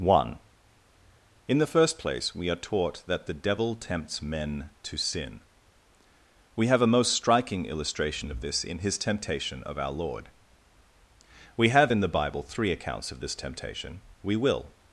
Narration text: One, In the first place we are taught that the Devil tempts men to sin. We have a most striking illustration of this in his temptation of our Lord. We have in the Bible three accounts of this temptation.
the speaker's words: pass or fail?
fail